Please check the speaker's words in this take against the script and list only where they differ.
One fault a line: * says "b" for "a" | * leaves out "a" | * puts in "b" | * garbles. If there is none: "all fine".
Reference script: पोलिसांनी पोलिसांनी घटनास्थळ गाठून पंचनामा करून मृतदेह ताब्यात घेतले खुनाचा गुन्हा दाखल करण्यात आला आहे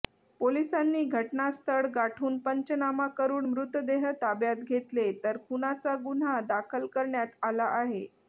* leaves out "पोलिसांनी"
* puts in "तर"